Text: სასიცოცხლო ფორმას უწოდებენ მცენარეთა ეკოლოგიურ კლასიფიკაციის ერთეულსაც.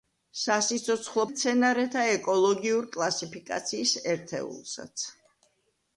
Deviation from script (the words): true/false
true